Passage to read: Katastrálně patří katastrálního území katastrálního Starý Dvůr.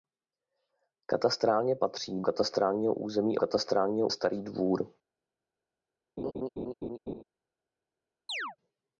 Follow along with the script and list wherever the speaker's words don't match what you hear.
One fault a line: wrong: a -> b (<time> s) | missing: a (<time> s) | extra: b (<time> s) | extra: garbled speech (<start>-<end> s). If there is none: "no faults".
no faults